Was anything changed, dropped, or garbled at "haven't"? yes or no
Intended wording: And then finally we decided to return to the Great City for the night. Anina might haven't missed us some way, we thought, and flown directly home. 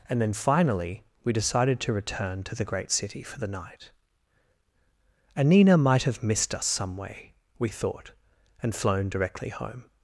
yes